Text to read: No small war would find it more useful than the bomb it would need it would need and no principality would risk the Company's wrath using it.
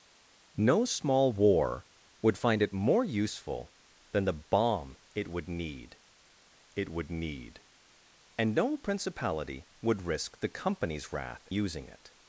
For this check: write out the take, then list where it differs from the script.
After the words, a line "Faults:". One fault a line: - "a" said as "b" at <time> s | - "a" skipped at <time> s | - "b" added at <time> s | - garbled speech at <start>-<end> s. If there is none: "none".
No small war would find it more useful than the bomb it would need it would need and no principality would risk the Company's wrath using it.
Faults:
none